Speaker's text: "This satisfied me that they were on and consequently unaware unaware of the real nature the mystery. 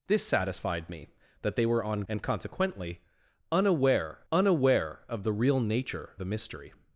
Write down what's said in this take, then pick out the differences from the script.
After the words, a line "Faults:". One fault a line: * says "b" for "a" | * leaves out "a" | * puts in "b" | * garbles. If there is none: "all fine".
"This satisfied me that they were on and consequently unaware unaware of the real nature the mystery.
Faults:
all fine